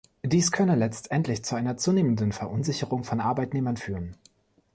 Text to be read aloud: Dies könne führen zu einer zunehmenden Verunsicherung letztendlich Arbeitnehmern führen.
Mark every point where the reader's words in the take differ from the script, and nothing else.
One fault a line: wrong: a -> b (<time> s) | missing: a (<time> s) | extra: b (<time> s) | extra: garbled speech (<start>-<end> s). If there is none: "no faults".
wrong: führen -> letztendlich (0.8 s)
wrong: letztendlich -> von (3.0 s)